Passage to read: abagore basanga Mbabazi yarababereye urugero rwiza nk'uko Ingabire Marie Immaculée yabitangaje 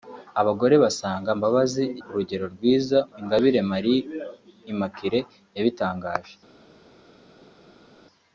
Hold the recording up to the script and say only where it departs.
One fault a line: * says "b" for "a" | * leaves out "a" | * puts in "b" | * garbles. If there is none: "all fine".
* leaves out "yarababereye"
* leaves out "nk'uko"